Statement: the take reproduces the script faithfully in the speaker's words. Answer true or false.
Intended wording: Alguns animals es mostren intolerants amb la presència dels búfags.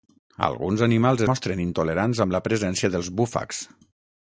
false